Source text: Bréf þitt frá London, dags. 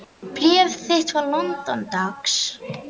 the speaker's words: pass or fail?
pass